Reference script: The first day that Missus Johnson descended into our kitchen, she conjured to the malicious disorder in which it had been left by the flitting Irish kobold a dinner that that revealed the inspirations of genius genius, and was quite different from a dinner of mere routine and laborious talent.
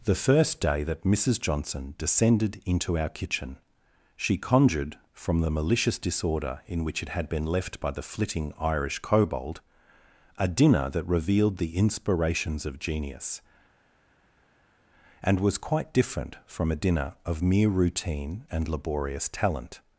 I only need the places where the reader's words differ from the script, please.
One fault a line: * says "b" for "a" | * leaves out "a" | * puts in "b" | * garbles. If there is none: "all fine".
* says "from" for "to"
* leaves out "that"
* leaves out "genius"